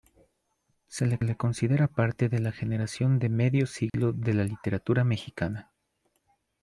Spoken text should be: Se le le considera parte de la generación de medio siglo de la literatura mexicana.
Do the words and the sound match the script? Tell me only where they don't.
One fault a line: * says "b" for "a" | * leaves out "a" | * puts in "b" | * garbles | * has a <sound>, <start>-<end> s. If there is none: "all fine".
* has a dropout, 3.9-3.9 s